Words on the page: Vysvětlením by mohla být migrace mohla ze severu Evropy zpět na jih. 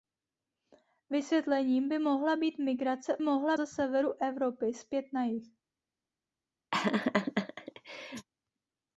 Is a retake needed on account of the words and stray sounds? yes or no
yes